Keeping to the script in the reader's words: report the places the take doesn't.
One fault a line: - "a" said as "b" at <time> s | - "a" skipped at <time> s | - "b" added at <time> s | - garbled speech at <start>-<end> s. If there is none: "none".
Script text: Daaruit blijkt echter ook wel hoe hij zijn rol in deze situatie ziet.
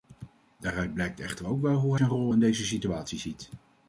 - "hij" skipped at 1.9 s